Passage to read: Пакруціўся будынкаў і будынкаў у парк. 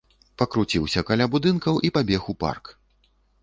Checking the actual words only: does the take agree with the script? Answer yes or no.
no